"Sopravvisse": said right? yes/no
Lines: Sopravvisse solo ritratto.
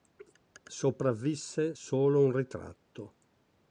yes